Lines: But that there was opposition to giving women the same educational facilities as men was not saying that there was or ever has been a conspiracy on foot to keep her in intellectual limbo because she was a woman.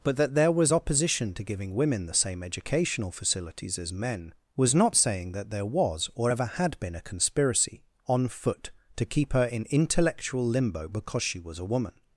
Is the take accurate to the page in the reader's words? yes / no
no